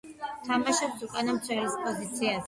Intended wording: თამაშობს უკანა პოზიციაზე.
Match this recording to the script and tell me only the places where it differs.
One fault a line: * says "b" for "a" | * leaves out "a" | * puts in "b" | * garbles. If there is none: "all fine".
* puts in "მცველის"